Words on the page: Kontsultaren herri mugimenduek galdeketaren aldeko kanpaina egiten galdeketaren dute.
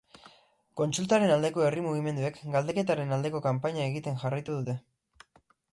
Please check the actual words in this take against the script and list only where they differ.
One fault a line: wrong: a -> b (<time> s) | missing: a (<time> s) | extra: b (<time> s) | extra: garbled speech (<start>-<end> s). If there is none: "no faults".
extra: aldeko (1.3 s)
wrong: galdeketaren -> jarraitu (4.2 s)